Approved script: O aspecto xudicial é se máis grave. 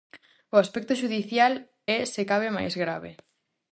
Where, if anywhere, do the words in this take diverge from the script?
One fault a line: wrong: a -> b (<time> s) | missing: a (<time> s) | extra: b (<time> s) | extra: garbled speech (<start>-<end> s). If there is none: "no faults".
extra: cabe (2.3 s)